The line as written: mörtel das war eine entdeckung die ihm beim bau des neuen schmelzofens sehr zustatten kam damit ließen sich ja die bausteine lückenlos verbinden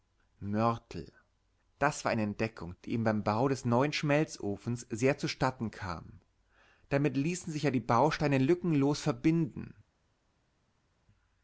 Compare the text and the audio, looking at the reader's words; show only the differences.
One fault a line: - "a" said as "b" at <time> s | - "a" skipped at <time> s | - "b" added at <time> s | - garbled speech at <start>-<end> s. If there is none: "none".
none